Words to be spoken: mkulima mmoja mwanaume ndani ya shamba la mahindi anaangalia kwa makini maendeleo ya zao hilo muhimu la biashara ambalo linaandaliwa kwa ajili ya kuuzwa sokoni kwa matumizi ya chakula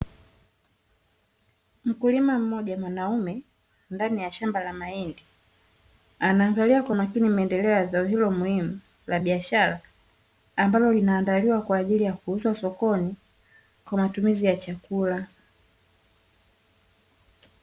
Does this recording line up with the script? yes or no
yes